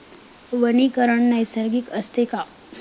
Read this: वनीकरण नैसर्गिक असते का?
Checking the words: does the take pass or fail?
pass